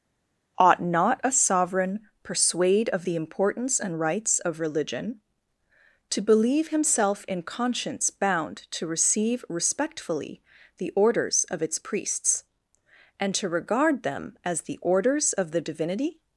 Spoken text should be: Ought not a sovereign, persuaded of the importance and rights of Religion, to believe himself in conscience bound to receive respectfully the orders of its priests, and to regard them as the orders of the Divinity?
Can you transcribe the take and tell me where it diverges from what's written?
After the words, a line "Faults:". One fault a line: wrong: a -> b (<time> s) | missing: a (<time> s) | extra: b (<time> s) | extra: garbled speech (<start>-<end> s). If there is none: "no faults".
Ought not a sovereign, persuade of the importance and rights of Religion, to believe himself in conscience bound to receive respectfully the orders of its priests, and to regard them as the orders of the Divinity?
Faults:
wrong: persuaded -> persuade (2.2 s)